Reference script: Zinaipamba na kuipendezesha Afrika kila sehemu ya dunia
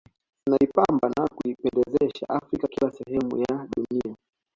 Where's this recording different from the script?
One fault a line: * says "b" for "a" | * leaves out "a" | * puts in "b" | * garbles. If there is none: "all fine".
all fine